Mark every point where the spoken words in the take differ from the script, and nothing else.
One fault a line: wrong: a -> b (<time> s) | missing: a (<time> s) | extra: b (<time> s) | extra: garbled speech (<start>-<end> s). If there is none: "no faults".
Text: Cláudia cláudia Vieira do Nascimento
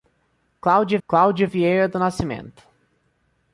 no faults